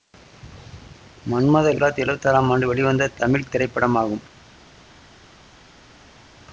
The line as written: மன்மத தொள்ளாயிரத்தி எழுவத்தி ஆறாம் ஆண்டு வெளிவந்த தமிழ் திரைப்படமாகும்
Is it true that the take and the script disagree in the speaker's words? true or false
false